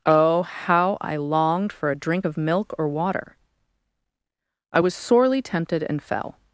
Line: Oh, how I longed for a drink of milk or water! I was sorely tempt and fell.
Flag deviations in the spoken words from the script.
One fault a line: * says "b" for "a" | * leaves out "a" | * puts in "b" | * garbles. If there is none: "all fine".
* says "tempted" for "tempt"